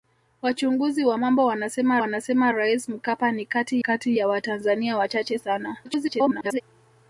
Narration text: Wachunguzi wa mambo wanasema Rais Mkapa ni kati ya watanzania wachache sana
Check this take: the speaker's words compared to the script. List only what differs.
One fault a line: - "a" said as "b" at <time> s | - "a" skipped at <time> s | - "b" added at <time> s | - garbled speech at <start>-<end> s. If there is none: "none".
- "wanasema" added at 2.0 s
- "kati" added at 3.8 s
- garbled speech at 5.8-6.6 s